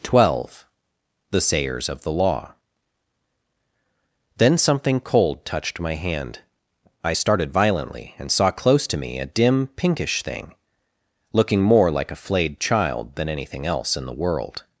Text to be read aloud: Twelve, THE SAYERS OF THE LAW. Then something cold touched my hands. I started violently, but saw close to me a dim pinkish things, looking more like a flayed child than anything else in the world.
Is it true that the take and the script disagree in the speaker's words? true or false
true